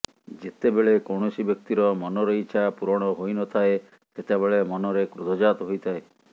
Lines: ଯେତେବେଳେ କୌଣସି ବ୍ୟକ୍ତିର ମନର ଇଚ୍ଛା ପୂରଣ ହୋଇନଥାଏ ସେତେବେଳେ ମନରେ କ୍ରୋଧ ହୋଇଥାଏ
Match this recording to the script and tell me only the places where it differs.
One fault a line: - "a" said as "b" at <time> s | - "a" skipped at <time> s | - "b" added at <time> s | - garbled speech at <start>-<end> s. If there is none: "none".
- "ଜାତ" added at 5.5 s